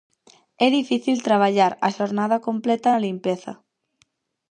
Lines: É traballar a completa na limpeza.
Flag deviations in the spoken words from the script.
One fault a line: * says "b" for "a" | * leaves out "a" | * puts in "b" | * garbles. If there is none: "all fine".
* puts in "difícil"
* puts in "xornada"